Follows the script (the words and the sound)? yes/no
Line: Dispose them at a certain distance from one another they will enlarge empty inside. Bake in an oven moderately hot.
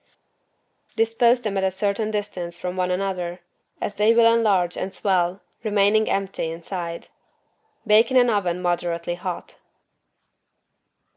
no